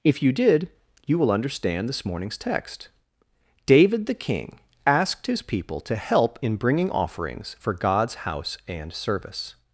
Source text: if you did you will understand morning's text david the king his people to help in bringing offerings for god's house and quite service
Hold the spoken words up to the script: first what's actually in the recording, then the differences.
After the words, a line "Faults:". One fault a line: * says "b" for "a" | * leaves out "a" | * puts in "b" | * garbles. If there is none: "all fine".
if you did you will understand this morning's text david the king asked his people to help in bringing offerings for god's house and service
Faults:
* puts in "this"
* puts in "asked"
* leaves out "quite"